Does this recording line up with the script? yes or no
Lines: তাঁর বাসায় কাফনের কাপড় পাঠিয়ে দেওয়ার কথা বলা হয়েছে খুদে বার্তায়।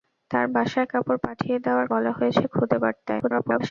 no